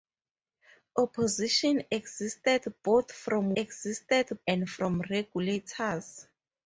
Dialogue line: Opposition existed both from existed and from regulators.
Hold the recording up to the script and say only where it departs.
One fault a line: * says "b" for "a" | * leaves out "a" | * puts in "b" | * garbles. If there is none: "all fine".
all fine